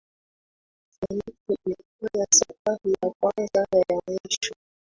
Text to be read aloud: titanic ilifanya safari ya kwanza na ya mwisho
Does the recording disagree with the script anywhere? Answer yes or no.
no